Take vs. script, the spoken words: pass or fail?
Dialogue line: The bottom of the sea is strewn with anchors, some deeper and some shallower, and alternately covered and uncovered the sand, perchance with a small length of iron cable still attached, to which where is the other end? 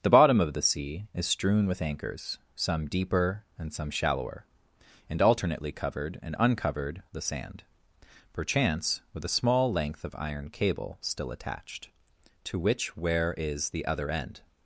pass